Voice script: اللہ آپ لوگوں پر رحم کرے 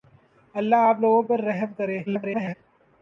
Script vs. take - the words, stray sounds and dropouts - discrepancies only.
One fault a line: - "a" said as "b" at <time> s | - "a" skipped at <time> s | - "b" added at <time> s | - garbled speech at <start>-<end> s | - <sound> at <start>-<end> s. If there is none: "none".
- garbled speech at 2.1-2.5 s